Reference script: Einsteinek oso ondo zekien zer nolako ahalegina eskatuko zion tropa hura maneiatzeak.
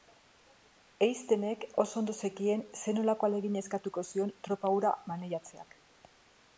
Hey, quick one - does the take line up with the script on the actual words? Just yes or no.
yes